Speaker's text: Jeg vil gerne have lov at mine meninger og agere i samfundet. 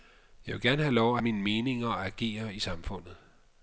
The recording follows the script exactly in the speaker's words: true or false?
true